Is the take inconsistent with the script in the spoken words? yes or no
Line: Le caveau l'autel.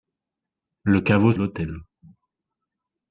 no